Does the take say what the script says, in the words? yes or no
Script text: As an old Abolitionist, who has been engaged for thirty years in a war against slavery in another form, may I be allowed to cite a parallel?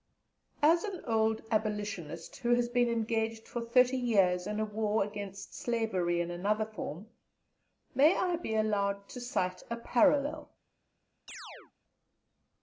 yes